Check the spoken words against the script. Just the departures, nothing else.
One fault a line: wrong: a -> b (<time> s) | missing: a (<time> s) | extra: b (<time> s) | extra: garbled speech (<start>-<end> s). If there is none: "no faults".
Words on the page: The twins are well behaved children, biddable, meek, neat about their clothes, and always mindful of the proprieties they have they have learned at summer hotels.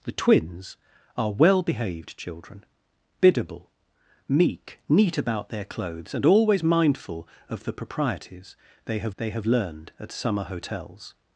no faults